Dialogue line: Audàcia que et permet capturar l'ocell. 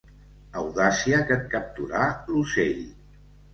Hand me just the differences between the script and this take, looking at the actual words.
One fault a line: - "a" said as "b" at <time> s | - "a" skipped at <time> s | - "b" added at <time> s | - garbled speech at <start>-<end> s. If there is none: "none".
- "permet" skipped at 1.4 s